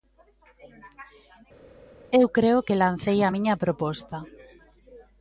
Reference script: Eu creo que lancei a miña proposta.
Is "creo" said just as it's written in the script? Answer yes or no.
yes